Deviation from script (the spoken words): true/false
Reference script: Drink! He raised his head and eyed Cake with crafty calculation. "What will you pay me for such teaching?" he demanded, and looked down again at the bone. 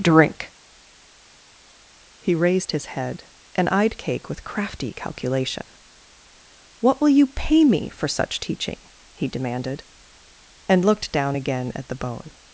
false